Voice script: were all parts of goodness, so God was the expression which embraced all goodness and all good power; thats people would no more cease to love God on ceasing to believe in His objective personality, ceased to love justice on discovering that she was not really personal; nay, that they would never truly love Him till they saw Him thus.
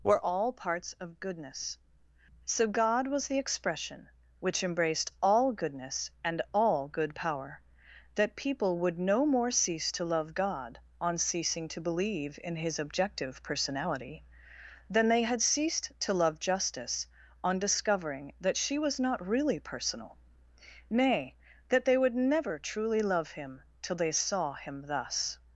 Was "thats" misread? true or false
true